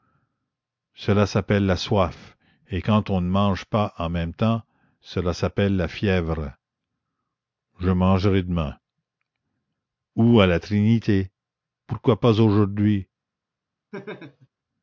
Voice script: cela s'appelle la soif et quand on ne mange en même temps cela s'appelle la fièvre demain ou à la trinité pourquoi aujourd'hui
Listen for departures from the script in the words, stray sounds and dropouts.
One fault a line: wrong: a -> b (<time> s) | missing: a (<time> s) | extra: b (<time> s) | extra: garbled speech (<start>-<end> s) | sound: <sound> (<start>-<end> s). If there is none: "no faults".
extra: pas (3.6 s)
extra: je mangerai (7.8 s)
extra: pas (12.2 s)
sound: laugh (13.9-14.5 s)